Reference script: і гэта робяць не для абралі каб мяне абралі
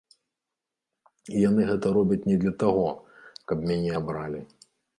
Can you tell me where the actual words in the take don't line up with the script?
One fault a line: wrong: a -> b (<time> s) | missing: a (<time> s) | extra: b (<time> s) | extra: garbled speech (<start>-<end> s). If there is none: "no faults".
extra: яны (1.5 s)
wrong: абралі -> таго (2.6 s)